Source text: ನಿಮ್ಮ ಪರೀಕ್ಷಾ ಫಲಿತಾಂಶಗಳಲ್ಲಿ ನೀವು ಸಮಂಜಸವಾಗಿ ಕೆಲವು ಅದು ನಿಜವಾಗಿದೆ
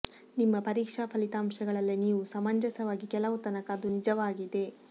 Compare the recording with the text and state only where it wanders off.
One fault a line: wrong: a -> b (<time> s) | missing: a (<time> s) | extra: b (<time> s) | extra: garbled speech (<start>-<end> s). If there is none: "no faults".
extra: ತನಕ (3.5 s)